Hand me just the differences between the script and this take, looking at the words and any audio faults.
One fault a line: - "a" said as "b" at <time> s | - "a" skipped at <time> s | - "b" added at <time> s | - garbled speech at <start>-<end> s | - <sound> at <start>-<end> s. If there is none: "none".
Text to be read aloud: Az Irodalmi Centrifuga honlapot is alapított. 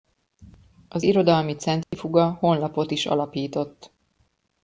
- dropout at 1.8-1.9 s